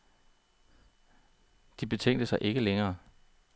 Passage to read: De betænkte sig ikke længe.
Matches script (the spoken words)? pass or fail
pass